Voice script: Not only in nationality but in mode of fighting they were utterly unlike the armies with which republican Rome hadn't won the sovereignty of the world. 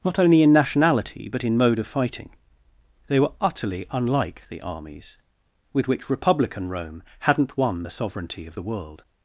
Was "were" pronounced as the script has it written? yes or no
yes